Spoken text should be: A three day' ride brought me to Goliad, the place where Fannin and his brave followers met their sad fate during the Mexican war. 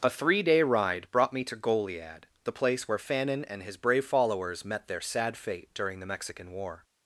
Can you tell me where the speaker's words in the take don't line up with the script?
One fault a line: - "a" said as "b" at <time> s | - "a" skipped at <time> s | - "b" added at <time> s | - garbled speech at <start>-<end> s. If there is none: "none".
none